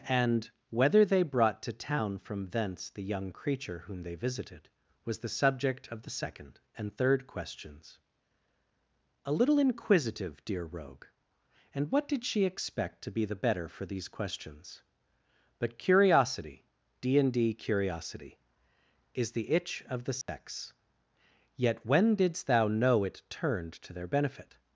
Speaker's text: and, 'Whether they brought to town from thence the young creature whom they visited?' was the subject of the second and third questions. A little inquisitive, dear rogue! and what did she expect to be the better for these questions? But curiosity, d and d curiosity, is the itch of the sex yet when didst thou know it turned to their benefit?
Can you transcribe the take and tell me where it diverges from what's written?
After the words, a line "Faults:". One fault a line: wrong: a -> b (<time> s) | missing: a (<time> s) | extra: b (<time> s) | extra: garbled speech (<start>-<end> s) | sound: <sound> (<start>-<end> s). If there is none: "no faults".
and, 'Whether they brought to town from thence the young creature whom they visited?' was the subject of the second and third questions. A little inquisitive, dear rogue! and what did she expect to be the better for these questions? But curiosity, d and d curiosity, is the itch of the sex yet when didst thou know it turned to their benefit?
Faults:
sound: dropout (20.2-20.3 s)